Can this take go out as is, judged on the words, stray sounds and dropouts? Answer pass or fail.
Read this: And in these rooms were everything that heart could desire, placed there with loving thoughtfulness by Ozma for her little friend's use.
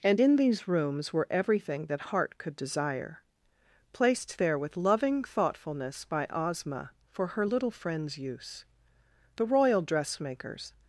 fail